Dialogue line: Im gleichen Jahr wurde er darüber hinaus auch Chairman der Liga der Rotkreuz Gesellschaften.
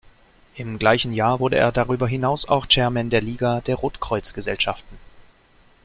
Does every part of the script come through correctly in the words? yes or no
yes